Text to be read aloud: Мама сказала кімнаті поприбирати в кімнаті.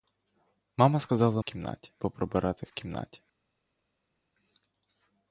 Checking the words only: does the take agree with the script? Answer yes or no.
yes